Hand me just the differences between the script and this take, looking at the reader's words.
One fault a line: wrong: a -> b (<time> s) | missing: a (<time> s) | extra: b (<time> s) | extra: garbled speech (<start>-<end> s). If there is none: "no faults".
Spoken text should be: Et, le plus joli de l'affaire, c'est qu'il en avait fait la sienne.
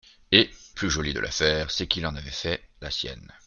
missing: le (0.5 s)